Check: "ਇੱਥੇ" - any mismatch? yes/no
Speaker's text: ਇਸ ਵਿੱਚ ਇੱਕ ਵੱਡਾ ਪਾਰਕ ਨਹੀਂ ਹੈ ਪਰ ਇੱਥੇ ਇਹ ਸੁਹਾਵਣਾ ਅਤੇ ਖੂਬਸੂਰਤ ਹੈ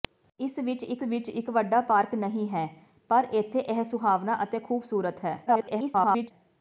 no